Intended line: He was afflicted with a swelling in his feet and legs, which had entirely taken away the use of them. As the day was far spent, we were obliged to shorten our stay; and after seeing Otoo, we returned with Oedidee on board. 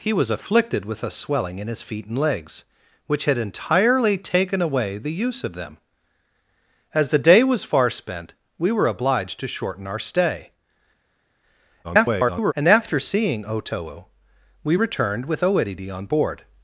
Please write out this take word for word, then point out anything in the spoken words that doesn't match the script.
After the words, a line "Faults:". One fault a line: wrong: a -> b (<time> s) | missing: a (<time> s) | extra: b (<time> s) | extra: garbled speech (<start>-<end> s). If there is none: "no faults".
He was afflicted with a swelling in his feet and legs, which had entirely taken away the use of them. As the day was far spent, we were obliged to shorten our stay; [garbled] and after seeing Otoo, we returned with Oedidee on board.
Faults:
extra: garbled speech (11.8-12.5 s)